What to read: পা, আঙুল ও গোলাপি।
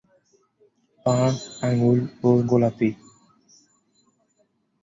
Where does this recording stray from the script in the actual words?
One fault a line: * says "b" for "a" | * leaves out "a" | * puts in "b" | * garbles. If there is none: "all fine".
all fine